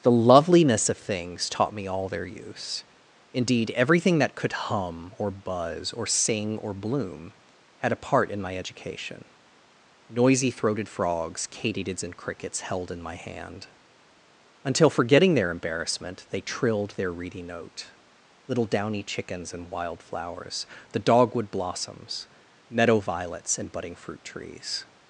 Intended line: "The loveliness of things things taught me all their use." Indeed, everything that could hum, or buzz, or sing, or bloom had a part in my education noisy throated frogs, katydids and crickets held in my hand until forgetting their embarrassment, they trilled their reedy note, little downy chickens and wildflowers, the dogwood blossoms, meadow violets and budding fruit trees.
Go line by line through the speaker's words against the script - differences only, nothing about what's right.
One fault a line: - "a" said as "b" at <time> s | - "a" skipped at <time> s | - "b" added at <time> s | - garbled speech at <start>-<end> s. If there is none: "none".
- "things" skipped at 1.5 s